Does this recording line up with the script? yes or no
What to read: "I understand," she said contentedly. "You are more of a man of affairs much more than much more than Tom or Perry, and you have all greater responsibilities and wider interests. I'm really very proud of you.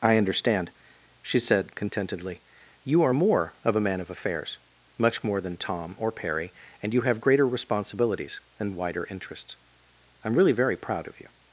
no